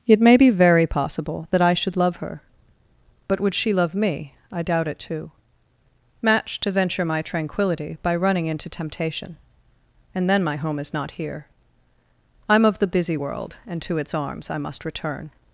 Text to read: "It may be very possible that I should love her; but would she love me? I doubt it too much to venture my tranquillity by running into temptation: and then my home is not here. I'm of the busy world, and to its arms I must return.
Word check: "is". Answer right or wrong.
right